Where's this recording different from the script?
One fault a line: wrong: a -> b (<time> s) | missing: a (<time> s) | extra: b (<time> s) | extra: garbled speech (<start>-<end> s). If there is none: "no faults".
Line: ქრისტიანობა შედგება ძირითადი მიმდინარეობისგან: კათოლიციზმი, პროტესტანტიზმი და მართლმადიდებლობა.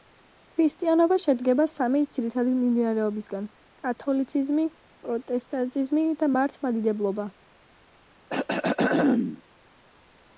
extra: სამი (1.7 s)